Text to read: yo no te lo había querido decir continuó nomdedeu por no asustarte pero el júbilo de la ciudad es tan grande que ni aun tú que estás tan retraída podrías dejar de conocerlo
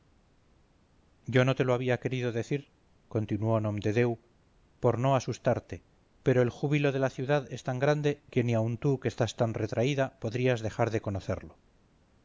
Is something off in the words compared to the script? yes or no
no